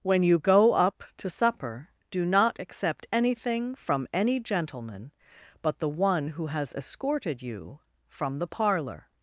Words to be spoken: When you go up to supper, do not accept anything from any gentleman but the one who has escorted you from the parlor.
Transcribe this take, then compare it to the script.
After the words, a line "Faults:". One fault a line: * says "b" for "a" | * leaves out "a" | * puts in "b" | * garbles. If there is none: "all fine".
When you go up to supper, do not accept anything from any gentleman but the one who has escorted you from the parlor.
Faults:
all fine